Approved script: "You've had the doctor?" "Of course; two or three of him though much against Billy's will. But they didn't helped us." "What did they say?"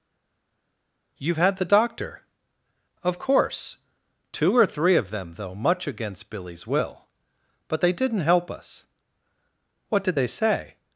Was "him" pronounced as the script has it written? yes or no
no